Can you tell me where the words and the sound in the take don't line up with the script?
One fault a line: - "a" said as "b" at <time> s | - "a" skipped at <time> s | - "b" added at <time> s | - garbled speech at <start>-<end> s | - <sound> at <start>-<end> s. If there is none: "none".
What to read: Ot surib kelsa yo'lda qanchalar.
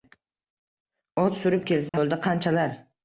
- dropout at 1.9-1.9 s